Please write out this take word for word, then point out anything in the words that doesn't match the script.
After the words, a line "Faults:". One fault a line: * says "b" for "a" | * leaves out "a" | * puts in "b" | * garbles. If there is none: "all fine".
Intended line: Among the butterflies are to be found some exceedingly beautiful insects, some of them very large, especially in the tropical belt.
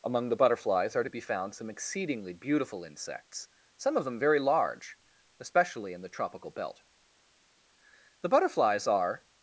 Among the butterflies are to be found some exceedingly beautiful insects, some of them very large, especially in the tropical belt. The butterflies are
Faults:
* puts in "The butterflies are"